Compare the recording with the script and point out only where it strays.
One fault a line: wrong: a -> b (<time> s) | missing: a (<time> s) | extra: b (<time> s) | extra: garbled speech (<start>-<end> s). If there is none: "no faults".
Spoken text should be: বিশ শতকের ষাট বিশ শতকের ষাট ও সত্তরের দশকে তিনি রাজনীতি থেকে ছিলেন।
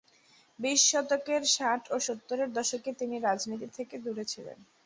missing: বিশ শতকের ষাট (1.8 s)
extra: দূরে (4.0 s)